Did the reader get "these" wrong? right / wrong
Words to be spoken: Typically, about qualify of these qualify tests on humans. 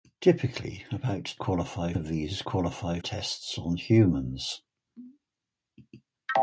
right